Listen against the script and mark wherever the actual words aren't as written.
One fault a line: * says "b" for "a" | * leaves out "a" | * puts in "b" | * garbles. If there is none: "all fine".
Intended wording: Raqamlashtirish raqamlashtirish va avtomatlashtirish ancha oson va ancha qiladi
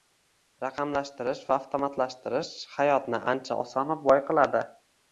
* leaves out "raqamlashtirish"
* puts in "hayotni"
* says "boy" for "ancha"